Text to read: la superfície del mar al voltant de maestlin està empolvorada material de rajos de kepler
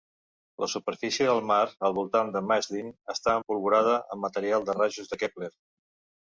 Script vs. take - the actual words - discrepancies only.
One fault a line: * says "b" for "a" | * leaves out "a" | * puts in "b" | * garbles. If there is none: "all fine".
* puts in "amb"